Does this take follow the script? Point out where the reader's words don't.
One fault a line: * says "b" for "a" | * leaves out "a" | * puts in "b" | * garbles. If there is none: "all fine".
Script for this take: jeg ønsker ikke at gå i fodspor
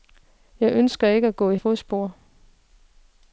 all fine